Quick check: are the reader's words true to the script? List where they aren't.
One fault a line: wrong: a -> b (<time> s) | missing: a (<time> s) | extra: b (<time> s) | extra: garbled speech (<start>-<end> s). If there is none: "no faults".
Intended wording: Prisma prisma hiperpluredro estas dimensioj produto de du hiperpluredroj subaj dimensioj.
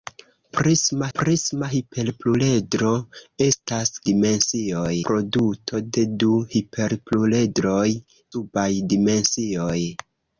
no faults